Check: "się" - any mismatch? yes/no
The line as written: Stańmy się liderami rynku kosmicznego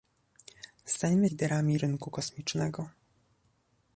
yes